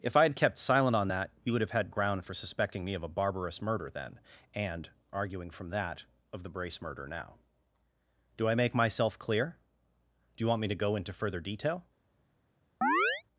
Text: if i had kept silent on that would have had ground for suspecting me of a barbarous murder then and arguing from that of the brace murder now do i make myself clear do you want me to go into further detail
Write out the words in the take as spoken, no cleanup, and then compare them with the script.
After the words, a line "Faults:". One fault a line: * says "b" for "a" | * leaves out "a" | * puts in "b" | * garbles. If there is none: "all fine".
if i had kept silent on that you would have had ground for suspecting me of a barbarous murder then and arguing from that of the brace murder now do i make myself clear do you want me to go into further detail
Faults:
* puts in "you"